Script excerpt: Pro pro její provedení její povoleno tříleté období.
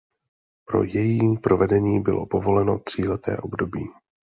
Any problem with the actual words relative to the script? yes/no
yes